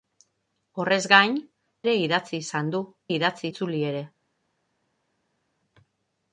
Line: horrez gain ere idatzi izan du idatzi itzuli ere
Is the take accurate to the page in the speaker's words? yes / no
yes